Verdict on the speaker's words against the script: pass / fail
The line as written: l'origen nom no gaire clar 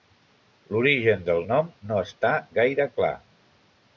fail